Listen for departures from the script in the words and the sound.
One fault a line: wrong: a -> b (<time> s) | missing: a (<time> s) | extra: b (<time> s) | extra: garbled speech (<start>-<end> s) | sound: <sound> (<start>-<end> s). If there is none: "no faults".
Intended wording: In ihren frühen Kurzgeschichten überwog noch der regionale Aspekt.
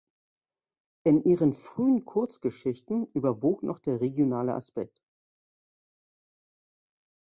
no faults